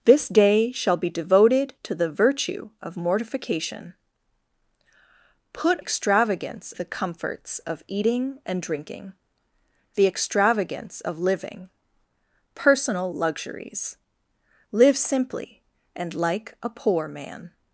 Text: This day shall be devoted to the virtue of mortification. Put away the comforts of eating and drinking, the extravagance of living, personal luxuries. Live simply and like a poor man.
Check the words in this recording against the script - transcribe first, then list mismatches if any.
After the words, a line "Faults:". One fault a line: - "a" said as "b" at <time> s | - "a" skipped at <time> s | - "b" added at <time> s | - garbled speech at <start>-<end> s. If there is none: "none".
This day shall be devoted to the virtue of mortification. Put extravagance the comforts of eating and drinking, the extravagance of living, personal luxuries. Live simply and like a poor man.
Faults:
- "away" said as "extravagance" at 5.8 s